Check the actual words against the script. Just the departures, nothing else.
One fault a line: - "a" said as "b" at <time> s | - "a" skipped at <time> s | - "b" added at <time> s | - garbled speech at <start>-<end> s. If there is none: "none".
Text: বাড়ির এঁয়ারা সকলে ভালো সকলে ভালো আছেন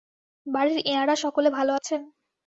- "সকলে ভালো" skipped at 1.7 s